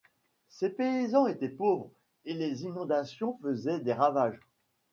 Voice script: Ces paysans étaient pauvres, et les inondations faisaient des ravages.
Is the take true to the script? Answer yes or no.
yes